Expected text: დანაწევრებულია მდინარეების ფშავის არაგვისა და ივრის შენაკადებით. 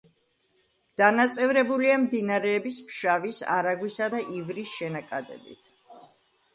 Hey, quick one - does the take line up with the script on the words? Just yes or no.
yes